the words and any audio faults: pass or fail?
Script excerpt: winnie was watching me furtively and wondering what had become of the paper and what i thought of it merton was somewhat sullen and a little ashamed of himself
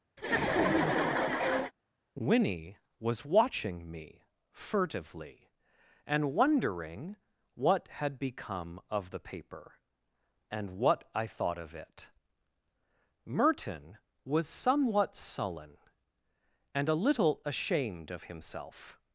fail